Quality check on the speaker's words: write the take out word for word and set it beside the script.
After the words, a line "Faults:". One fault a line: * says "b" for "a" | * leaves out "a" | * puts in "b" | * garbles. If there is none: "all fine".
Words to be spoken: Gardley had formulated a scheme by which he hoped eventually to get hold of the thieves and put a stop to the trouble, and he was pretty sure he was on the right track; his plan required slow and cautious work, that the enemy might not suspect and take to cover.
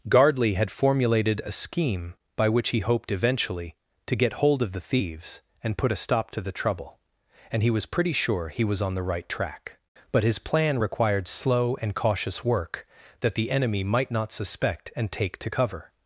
Gardley had formulated a scheme by which he hoped eventually to get hold of the thieves and put a stop to the trouble, and he was pretty sure he was on the right track; but his plan required slow and cautious work, that the enemy might not suspect and take to cover.
Faults:
* puts in "but"